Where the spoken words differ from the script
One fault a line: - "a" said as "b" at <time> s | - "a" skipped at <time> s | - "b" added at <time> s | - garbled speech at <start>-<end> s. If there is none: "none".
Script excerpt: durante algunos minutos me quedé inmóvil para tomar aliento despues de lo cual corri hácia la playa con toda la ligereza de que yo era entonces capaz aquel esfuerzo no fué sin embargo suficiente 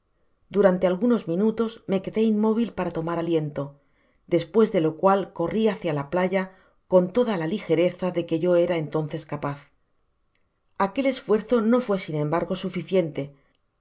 none